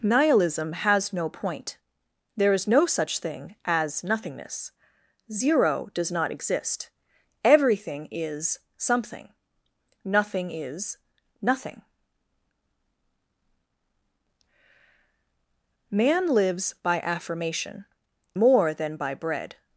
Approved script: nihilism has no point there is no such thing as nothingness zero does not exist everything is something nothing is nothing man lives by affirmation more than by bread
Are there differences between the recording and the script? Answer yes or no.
no